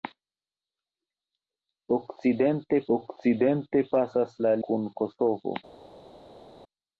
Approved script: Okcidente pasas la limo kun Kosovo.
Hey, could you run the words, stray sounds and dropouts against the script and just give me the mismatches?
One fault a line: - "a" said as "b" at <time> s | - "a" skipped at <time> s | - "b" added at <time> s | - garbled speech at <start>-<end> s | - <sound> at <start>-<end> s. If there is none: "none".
- "okcidente" added at 3.0 s
- "limo" skipped at 4.5 s